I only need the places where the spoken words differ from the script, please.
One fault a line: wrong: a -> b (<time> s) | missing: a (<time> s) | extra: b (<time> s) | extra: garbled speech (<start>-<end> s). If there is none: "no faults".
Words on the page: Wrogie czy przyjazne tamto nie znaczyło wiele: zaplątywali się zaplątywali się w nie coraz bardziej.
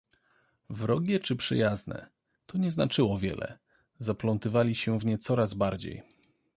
wrong: tamto -> to (2.5 s)
missing: zaplątywali się (5.0 s)